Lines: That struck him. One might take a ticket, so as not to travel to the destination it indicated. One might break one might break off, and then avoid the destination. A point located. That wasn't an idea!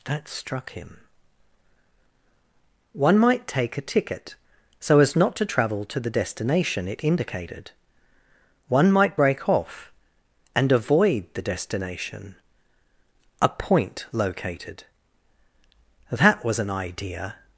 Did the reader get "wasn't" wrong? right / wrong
wrong